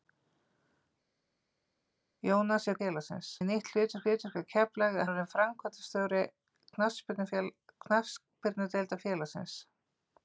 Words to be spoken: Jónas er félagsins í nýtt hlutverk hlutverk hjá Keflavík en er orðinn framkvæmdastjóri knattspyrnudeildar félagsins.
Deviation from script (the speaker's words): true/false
false